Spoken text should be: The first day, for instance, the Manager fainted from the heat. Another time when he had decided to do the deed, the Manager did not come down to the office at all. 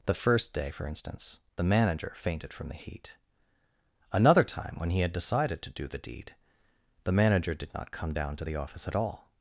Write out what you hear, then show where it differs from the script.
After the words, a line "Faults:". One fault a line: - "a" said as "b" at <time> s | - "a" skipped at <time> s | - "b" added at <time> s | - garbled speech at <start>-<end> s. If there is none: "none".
The first day, for instance, the Manager fainted from the heat. Another time when he had decided to do the deed, the Manager did not come down to the office at all.
Faults:
none